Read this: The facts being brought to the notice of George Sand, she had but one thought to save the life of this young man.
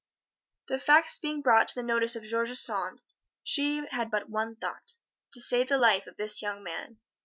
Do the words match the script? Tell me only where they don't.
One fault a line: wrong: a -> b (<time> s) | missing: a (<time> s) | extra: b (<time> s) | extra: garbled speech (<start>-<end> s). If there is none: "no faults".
no faults